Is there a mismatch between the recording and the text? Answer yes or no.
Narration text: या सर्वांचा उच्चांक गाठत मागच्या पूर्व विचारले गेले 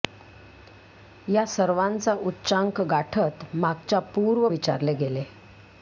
no